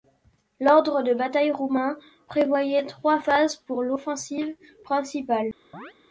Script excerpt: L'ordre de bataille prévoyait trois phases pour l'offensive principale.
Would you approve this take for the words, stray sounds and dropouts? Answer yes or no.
no